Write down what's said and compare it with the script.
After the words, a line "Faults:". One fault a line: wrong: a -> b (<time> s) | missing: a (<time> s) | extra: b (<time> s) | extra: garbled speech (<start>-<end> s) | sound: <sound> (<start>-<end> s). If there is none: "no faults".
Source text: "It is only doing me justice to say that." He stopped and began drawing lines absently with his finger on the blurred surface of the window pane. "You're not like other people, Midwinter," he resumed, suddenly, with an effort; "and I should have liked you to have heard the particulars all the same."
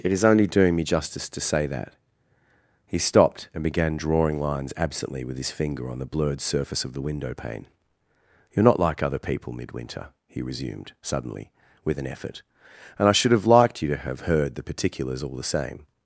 "It is only doing me justice to say that." He stopped and began drawing lines absently with his finger on the blurred surface of the window pane. "You're not like other people, Midwinter," he resumed, suddenly, with an effort; "and I should have liked you to have heard the particulars all the same."
Faults:
no faults